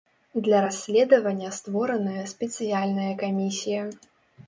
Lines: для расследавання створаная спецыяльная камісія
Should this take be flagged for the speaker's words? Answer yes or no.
no